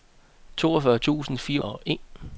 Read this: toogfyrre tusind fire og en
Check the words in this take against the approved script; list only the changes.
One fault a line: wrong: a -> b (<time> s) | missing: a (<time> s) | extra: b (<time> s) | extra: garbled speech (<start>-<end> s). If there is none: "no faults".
no faults